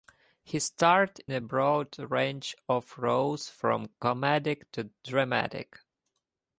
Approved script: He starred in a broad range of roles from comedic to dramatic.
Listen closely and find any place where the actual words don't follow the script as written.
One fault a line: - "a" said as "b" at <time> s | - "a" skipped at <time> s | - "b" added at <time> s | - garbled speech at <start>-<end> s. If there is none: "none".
- "in" skipped at 1.2 s